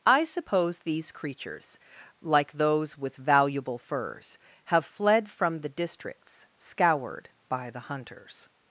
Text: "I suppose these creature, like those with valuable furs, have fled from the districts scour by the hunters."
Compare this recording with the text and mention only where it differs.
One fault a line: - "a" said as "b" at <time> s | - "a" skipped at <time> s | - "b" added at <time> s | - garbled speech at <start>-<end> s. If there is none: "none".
- "creature" said as "creatures" at 1.1 s
- "scour" said as "scoured" at 6.6 s